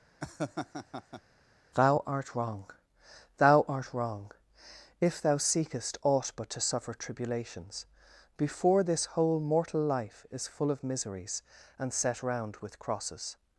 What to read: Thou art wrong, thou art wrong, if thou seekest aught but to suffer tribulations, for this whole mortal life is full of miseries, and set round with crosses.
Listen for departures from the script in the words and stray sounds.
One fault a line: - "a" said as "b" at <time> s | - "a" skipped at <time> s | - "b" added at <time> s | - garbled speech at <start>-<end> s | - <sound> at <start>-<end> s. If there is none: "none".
- laugh at 0.2-1.2 s
- "for" said as "before" at 8.4 s